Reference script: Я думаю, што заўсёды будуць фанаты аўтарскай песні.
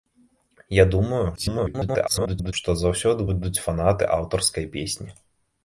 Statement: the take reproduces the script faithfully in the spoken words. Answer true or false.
false